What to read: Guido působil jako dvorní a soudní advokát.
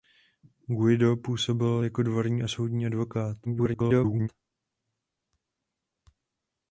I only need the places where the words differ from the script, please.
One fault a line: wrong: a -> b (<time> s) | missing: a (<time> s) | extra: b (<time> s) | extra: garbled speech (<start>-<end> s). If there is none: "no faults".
extra: garbled speech (3.4-4.3 s)